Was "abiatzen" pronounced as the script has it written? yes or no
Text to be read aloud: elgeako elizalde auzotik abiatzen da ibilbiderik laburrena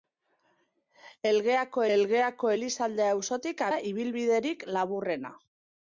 no